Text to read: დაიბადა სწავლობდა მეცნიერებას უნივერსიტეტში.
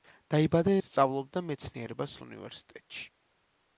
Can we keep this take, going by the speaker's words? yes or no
yes